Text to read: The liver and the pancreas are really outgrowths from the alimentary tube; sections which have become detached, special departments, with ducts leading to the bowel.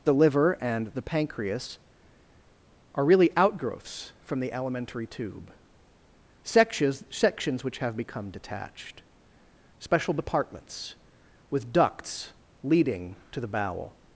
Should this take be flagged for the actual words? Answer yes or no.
yes